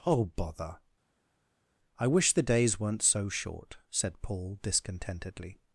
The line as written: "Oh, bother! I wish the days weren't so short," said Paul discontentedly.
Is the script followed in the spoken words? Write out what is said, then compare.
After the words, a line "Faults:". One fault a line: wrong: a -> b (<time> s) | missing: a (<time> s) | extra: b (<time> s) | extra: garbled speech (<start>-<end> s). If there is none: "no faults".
"Oh, bother! I wish the days weren't so short," said Paul discontentedly.
Faults:
no faults